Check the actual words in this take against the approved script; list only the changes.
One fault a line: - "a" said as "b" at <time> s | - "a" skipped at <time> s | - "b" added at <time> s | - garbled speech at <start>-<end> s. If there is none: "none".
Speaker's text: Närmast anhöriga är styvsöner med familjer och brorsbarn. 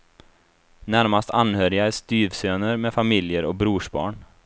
none